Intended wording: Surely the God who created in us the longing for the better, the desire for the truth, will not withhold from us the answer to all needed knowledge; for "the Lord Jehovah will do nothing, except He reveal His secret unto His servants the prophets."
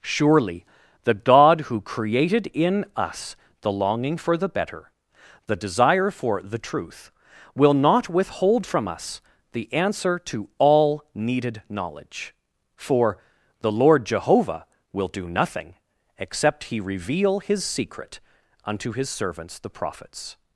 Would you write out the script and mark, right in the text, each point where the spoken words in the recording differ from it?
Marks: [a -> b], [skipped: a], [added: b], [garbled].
Surely the God who created in us the longing for the better, the desire for the truth, will not withhold from us the answer to all needed knowledge; for "the Lord Jehovah will do nothing, except He reveal His secret unto His servants the prophets."